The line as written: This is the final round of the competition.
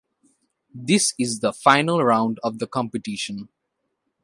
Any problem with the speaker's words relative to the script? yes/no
no